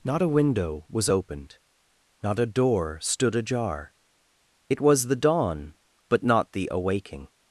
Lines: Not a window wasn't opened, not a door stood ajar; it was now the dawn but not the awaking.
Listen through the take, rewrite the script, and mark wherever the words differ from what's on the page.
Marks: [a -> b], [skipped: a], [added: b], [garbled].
Not a window [wasn't -> was] opened, not a door stood ajar; it was [skipped: now] the dawn but not the awaking.